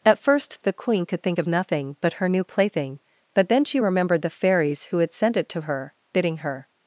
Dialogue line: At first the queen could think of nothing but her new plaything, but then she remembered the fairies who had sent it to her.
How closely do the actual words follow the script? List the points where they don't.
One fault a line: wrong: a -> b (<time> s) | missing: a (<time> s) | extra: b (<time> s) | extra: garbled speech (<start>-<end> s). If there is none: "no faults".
extra: Bidding her (6.1 s)